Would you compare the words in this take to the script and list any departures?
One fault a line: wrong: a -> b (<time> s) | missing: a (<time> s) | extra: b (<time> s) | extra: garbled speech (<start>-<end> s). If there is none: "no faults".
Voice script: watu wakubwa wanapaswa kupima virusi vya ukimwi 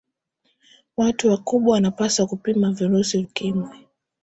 missing: vya (3.2 s)